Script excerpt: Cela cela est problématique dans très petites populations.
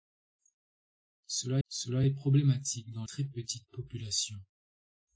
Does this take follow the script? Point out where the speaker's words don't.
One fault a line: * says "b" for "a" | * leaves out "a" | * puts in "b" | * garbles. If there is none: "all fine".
all fine